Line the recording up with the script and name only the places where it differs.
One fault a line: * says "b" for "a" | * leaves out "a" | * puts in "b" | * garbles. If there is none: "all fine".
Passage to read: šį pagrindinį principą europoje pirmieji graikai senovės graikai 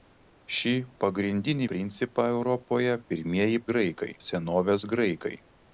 all fine